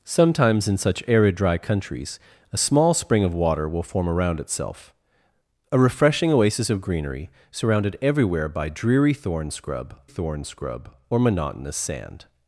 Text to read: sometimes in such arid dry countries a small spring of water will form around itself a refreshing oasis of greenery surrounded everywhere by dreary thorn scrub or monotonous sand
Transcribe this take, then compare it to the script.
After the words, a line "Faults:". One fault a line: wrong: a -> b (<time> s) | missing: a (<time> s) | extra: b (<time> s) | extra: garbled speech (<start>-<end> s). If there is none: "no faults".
sometimes in such arid dry countries a small spring of water will form around itself a refreshing oasis of greenery surrounded everywhere by dreary thorn scrub thorn scrub or monotonous sand
Faults:
extra: thorn scrub (10.0 s)